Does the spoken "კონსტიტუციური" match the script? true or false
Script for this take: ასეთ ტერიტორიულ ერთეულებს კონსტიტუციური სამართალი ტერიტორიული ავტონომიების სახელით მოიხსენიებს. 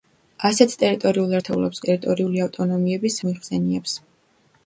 false